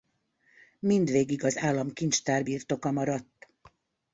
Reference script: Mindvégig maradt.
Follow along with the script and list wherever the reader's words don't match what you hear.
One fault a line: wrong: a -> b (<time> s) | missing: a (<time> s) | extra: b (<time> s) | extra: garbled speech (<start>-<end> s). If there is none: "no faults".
extra: az államkincstár birtoka (1.4 s)